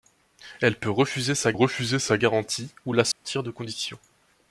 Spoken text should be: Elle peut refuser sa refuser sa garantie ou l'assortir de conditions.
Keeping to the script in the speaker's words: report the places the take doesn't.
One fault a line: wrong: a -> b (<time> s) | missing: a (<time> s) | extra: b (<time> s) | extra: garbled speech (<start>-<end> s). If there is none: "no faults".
no faults